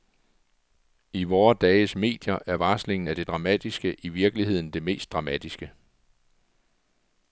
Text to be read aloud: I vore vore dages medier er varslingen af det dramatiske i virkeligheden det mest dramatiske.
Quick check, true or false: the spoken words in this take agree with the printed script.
false